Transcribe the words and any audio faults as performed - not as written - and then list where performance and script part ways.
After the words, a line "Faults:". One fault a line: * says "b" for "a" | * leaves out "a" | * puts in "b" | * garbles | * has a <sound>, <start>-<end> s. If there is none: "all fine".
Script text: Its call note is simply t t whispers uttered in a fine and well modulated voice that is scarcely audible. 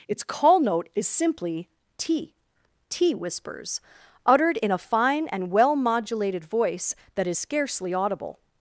Its call note is simply t t whispers uttered in a fine and well modulated voice that is scarcely audible.
Faults:
all fine